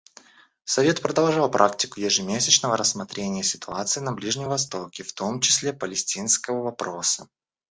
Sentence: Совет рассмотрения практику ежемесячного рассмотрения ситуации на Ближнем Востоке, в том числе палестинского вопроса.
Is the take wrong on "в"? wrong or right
right